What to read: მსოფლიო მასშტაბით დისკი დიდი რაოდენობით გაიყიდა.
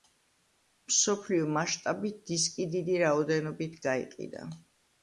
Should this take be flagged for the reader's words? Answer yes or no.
no